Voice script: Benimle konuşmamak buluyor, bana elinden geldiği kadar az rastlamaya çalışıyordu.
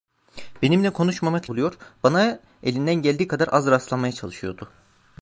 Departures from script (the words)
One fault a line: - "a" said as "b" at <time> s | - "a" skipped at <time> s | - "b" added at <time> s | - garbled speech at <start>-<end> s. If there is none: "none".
none